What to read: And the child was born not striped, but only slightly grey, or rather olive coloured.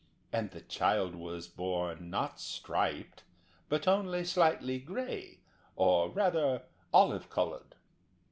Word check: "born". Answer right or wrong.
right